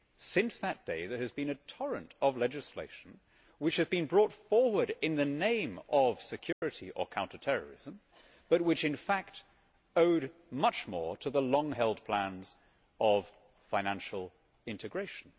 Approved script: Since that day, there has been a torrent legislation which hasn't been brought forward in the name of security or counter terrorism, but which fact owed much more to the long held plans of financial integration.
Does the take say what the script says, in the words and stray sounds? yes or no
no